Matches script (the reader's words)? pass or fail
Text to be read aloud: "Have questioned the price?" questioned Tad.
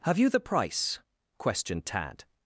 fail